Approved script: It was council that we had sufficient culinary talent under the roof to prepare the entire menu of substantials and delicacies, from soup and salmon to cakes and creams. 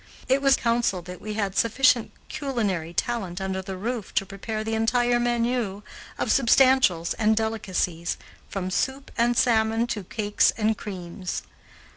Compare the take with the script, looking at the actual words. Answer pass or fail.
pass